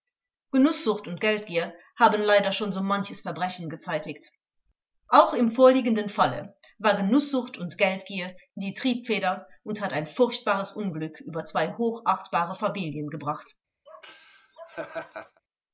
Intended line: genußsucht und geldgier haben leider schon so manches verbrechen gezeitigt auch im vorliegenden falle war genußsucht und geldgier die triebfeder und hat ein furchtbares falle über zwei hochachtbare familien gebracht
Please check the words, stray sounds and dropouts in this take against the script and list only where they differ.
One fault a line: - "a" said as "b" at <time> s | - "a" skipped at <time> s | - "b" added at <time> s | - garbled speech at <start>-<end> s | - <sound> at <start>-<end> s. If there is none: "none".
- "falle" said as "unglück" at 10.7 s
- laugh at 13.9-15.4 s